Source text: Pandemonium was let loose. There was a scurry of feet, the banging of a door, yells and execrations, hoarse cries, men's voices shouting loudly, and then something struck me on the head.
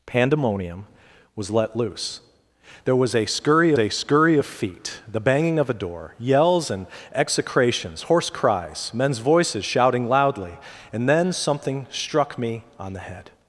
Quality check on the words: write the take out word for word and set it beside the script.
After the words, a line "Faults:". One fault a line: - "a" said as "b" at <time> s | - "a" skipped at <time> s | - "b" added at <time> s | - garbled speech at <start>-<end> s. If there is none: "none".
Pandemonium was let loose. There was a scurry a scurry of feet, the banging of a door, yells and execrations, hoarse cries, men's voices shouting loudly, and then something struck me on the head.
Faults:
- "a scurry" added at 3.8 s